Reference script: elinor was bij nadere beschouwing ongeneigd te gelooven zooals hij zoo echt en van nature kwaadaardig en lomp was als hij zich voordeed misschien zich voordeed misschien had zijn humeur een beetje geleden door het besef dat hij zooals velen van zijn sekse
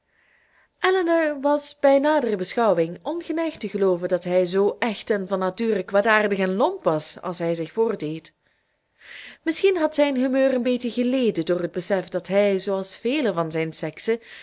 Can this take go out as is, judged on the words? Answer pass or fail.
fail